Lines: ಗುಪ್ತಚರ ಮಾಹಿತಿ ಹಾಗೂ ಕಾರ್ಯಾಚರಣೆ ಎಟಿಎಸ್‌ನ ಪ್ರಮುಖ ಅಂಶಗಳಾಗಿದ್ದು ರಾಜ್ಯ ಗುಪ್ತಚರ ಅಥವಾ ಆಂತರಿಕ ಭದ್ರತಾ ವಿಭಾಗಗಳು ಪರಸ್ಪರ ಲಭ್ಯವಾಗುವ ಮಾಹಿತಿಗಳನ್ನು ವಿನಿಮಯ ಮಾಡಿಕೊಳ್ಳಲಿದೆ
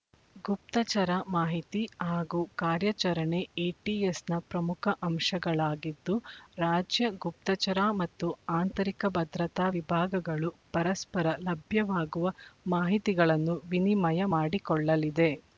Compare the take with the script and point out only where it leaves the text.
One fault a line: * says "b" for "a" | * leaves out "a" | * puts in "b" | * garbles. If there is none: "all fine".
* says "ಮತ್ತು" for "ಅಥವಾ"